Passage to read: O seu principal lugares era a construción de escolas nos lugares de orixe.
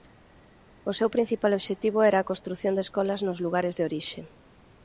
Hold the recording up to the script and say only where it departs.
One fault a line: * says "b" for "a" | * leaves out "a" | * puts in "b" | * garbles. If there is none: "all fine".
* says "obxectivo" for "lugares"